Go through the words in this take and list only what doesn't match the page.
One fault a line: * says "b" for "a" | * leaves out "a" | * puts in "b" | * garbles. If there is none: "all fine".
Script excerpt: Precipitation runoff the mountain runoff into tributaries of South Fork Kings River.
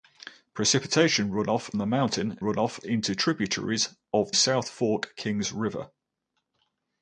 all fine